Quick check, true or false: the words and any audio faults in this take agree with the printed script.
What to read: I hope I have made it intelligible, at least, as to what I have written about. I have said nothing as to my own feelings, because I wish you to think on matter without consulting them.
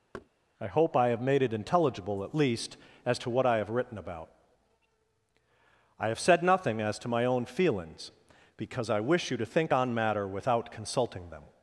false